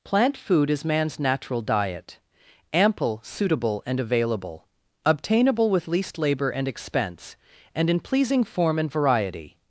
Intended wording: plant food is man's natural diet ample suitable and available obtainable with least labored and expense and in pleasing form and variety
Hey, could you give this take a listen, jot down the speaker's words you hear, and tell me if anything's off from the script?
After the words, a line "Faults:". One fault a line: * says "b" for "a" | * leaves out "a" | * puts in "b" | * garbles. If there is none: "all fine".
plant food is man's natural diet ample suitable and available obtainable with least labor and expense and in pleasing form and variety
Faults:
* says "labor" for "labored"